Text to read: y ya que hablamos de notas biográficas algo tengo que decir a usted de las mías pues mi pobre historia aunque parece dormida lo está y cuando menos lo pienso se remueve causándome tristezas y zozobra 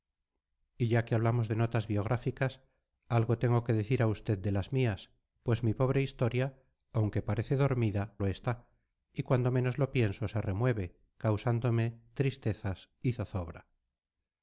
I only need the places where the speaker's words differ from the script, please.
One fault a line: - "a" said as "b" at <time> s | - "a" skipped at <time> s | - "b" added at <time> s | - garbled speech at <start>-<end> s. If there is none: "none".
none